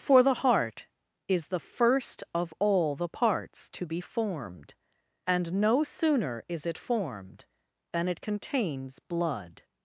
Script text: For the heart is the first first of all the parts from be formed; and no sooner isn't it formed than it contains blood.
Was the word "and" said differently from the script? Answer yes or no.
no